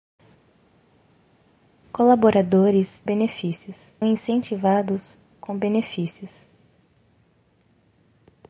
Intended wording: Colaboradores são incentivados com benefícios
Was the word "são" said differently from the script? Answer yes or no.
yes